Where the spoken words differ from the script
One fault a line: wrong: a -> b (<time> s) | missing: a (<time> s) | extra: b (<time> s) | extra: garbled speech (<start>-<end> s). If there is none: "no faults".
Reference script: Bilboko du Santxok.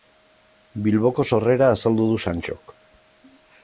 extra: sorrera azaldu (1.3 s)